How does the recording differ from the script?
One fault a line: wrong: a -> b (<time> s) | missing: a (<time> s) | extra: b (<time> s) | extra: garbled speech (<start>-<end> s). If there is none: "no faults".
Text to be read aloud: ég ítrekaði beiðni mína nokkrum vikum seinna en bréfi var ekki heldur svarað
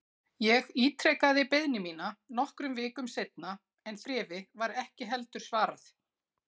no faults